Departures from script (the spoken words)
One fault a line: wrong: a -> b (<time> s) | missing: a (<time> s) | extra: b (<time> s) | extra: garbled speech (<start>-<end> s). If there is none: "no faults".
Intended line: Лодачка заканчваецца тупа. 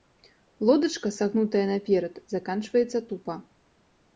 extra: сагнутая наперад (1.2 s)